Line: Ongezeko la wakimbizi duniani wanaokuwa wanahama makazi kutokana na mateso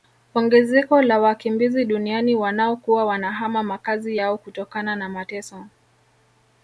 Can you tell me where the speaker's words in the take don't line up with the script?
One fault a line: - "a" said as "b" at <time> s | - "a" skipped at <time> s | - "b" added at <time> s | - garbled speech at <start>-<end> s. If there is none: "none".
- "yao" added at 4.1 s